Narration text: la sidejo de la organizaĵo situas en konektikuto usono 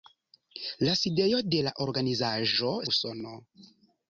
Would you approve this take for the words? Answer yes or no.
no